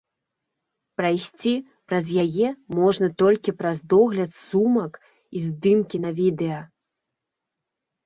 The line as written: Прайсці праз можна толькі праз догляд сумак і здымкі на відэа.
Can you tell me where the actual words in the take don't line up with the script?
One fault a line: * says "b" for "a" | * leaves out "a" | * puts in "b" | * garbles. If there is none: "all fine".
* puts in "яе"